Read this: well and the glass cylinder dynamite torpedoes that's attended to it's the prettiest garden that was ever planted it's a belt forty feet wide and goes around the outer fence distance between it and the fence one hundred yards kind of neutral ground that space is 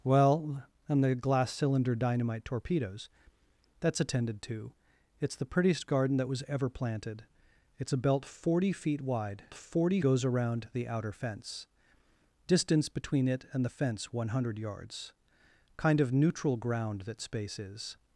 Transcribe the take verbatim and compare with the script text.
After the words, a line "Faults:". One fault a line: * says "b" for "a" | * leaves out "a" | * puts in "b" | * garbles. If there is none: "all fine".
well and the glass cylinder dynamite torpedoes that's attended to it's the prettiest garden that was ever planted it's a belt forty feet wide forty goes around the outer fence distance between it and the fence one hundred yards kind of neutral ground that space is
Faults:
* says "forty" for "and"